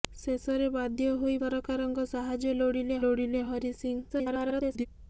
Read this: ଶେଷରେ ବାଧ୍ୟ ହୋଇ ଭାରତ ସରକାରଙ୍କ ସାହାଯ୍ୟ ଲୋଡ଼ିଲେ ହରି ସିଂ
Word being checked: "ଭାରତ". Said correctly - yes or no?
no